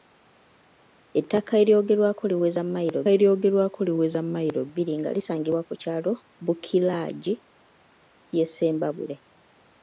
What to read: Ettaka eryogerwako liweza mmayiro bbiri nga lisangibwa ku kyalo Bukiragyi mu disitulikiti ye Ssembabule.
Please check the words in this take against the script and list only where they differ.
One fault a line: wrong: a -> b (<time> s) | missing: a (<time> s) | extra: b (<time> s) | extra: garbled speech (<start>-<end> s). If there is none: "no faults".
extra: eryogerwako liweza mmayiro (3.1 s)
missing: mu disitulikiti (7.3 s)